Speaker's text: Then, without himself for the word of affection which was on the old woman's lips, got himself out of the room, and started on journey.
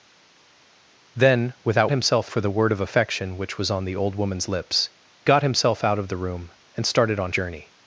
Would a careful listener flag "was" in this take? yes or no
no